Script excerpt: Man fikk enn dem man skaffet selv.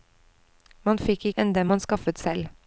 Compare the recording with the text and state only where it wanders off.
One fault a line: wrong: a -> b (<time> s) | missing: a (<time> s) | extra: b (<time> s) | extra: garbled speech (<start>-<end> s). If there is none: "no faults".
no faults